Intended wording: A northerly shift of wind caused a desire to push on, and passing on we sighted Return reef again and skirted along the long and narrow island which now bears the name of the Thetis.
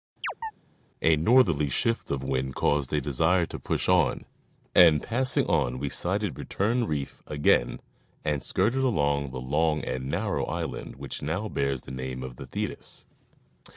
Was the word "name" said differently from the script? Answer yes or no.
no